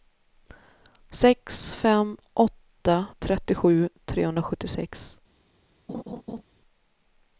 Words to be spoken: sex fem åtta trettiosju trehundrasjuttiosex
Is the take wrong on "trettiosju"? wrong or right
right